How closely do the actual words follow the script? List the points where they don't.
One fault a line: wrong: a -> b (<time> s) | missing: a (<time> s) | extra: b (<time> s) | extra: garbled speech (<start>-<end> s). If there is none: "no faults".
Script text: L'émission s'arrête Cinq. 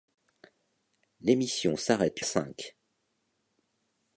no faults